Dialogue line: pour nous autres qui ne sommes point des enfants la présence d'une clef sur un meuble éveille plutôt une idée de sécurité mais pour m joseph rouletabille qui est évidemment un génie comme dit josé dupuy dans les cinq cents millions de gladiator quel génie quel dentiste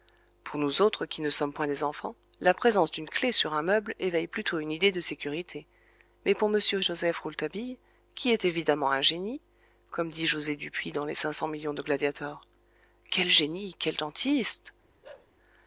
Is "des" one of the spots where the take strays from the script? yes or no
no